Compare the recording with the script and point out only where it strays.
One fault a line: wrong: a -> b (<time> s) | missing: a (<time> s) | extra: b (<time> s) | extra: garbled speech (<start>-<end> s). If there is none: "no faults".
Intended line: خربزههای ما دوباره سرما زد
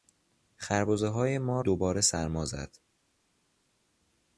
no faults